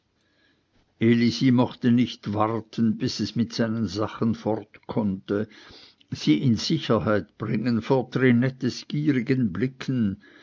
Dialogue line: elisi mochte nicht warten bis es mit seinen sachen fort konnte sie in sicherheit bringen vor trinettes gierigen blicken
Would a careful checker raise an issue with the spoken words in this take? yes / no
no